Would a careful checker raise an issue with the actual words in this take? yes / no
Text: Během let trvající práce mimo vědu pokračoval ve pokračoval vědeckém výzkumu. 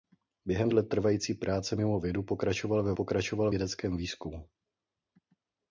no